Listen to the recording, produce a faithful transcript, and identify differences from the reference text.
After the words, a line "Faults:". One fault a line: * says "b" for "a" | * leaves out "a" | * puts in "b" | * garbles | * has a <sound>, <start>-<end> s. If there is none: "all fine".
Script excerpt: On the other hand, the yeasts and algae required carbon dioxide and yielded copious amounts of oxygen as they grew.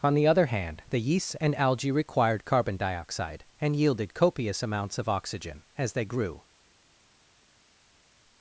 On the other hand, the yeasts and algae required carbon dioxide and yielded copious amounts of oxygen as they grew.
Faults:
all fine